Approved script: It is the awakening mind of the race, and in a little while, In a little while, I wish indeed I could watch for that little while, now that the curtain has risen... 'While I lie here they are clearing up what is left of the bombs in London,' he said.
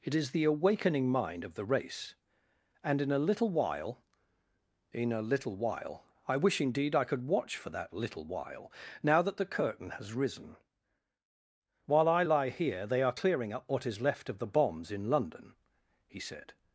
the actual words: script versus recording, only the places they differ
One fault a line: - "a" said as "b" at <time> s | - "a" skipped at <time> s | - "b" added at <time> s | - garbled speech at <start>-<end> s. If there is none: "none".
none